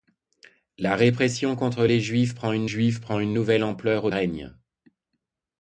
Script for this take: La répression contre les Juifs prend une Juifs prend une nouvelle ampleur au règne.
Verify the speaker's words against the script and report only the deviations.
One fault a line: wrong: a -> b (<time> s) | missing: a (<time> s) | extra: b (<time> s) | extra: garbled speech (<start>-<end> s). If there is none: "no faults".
no faults